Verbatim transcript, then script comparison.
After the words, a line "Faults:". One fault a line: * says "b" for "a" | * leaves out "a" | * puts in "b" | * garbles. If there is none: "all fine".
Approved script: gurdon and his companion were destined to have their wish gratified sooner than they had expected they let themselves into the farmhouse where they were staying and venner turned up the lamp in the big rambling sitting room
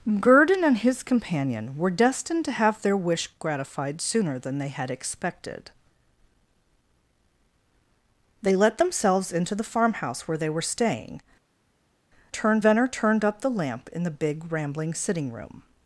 gurdon and his companion were destined to have their wish gratified sooner than they had expected they let themselves into the farmhouse where they were staying turned venner turned up the lamp in the big rambling sitting room
Faults:
* says "turned" for "and"